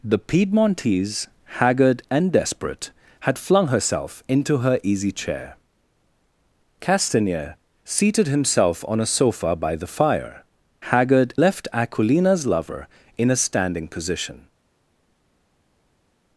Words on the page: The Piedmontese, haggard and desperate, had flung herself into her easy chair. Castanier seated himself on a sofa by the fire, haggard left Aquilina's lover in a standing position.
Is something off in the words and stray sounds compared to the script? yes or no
no